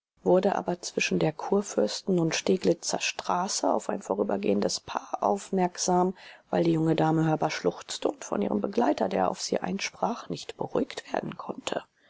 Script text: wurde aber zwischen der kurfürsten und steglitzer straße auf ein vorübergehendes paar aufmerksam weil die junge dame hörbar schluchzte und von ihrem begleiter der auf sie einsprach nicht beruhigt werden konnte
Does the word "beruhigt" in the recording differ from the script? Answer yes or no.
no